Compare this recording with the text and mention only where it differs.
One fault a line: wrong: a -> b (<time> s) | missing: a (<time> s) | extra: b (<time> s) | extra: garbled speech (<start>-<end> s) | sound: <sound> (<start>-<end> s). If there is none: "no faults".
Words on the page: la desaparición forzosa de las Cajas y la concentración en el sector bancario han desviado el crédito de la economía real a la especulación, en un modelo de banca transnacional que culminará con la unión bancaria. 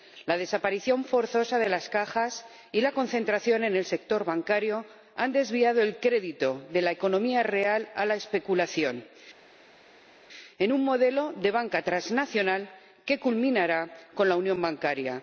no faults